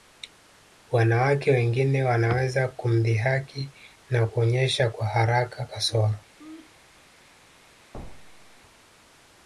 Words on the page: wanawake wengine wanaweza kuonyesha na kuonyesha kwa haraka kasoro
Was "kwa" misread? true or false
false